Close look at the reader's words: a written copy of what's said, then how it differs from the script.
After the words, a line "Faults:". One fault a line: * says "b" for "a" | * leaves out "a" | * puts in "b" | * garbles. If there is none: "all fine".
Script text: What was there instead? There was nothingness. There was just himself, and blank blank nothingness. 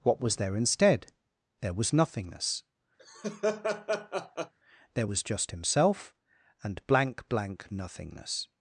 What was there instead? There was nothingness. There was just himself, and blank blank nothingness.
Faults:
all fine